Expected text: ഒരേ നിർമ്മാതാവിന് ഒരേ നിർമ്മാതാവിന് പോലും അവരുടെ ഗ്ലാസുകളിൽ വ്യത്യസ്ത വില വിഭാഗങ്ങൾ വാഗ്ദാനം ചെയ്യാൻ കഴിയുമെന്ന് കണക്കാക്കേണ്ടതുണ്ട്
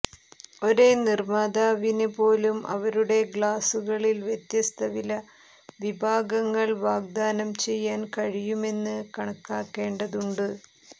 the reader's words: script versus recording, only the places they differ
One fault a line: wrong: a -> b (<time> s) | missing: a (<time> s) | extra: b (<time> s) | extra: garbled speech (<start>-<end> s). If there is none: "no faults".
missing: ഒരേ നിർമ്മാതാവിന് (2.1 s)